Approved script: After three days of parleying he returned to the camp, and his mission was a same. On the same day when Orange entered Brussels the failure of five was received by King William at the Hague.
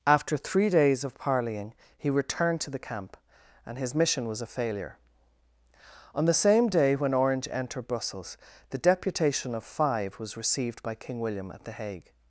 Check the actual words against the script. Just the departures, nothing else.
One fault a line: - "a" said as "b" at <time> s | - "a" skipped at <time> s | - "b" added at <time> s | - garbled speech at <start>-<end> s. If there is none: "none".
- "same" said as "failure" at 4.5 s
- "failure" said as "deputation" at 8.8 s